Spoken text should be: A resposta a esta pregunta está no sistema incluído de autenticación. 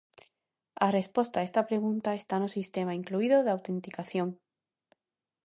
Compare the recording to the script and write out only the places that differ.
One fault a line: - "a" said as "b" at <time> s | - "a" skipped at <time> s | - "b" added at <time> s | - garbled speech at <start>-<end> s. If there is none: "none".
none